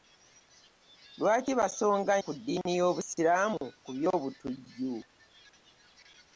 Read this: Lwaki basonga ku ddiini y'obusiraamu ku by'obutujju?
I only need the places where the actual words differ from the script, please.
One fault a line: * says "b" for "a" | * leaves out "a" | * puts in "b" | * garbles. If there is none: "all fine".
all fine